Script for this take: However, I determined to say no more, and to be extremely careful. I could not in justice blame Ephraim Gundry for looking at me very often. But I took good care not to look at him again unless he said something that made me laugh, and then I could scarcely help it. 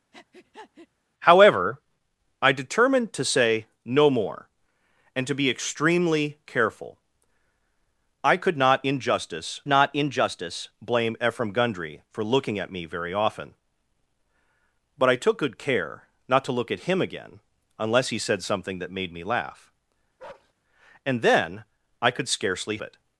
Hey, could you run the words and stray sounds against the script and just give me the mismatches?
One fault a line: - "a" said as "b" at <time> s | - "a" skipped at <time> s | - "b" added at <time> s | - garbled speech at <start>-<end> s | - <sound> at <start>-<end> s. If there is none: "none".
- breath at 0.1-0.9 s
- "not in justice" added at 9.7 s
- bark at 20.2-20.5 s
- "help" skipped at 22.8 s